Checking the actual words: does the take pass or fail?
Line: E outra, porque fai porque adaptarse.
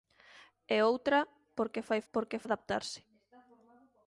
pass